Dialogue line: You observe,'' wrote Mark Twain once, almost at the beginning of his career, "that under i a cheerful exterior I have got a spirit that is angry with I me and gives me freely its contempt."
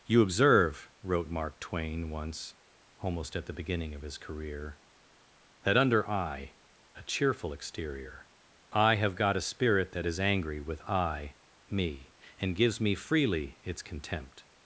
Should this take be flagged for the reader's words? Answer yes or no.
no